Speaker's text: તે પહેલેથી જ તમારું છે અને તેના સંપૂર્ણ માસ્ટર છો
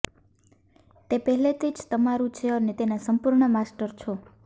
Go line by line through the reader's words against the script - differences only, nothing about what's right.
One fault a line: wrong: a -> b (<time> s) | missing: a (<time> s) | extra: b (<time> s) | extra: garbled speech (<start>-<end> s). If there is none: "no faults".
no faults